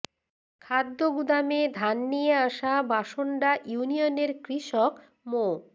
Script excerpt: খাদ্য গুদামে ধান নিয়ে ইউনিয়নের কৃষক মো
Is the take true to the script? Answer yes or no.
no